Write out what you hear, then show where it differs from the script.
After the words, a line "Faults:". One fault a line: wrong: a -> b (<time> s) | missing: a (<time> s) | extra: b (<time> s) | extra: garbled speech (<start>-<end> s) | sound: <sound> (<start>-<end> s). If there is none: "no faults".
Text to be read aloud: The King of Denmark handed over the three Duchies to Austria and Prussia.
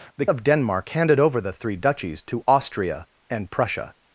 The Of Denmark handed over the three Duchies to Austria and Prussia.
Faults:
missing: King (0.2 s)